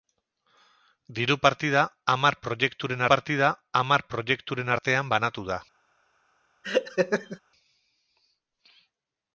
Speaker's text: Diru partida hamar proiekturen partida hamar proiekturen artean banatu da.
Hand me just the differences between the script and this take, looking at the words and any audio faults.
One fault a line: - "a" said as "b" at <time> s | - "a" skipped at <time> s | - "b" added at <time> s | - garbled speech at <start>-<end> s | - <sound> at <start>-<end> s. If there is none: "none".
- laugh at 6.6-7.4 s